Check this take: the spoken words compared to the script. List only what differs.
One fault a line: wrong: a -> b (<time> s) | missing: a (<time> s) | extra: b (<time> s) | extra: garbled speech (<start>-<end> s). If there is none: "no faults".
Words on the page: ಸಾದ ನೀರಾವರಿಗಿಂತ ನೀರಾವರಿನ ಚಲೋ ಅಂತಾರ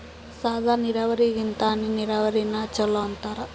extra: ಹನಿ (1.7 s)